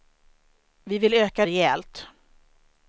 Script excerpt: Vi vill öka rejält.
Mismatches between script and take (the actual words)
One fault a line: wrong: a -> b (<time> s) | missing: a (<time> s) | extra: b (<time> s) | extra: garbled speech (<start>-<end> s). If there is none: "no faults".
no faults